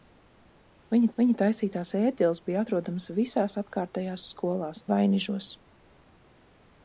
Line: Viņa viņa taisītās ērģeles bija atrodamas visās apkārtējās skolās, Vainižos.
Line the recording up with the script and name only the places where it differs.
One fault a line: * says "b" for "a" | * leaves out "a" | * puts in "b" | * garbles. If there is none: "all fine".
all fine